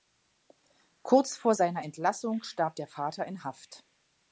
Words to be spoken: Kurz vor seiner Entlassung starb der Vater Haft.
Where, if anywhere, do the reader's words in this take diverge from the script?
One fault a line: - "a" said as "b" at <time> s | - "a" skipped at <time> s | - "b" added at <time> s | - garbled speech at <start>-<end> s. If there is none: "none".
- "in" added at 3.3 s